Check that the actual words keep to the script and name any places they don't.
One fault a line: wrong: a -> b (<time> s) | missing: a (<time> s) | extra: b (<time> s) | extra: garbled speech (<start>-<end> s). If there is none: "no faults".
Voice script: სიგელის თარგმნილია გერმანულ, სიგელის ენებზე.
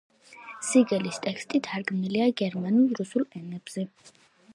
extra: ტექსტი (1.2 s)
wrong: სიგელის -> რუსულ (3.0 s)